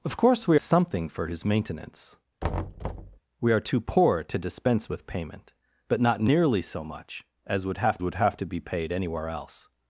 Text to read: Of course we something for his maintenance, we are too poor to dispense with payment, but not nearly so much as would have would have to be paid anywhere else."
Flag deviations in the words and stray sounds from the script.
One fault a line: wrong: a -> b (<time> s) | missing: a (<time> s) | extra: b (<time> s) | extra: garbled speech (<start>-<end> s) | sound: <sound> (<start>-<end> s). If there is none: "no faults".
sound: thud (2.4-3.2 s)